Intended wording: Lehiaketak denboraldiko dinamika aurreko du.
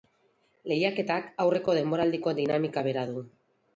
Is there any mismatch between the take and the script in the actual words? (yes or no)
yes